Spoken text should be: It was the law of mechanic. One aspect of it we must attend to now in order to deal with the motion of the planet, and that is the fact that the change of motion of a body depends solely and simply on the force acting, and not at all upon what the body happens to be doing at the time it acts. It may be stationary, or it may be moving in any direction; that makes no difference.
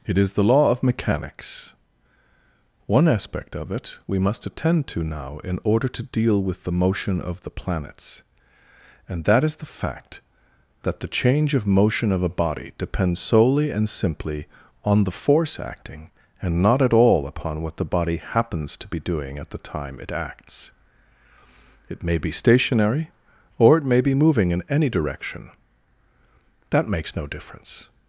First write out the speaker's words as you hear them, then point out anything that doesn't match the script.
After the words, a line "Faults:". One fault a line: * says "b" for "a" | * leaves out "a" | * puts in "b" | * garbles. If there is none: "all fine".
It is the law of mechanics. One aspect of it we must attend to now in order to deal with the motion of the planets, and that is the fact that the change of motion of a body depends solely and simply on the force acting, and not at all upon what the body happens to be doing at the time it acts. It may be stationary, or it may be moving in any direction; that makes no difference.
Faults:
* says "is" for "was"
* says "mechanics" for "mechanic"
* says "planets" for "planet"